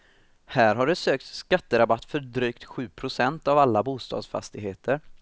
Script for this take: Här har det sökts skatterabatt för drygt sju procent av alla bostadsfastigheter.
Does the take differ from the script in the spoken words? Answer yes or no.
no